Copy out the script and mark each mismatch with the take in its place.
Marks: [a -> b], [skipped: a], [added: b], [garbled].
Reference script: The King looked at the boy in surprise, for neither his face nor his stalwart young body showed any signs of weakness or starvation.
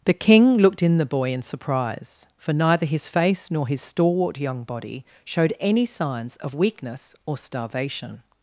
The King looked [at -> in] the boy in surprise, for neither his face nor his stalwart young body showed any signs of weakness or starvation.